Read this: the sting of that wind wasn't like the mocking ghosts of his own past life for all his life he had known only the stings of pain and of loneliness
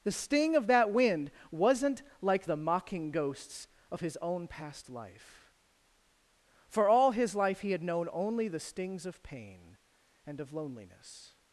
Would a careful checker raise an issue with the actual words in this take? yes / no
no